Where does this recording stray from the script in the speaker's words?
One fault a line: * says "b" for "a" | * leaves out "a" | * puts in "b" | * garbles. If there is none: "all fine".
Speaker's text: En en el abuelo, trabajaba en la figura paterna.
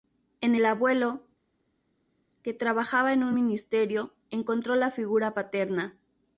* leaves out "en"
* puts in "que"
* puts in "un Ministerio encontró"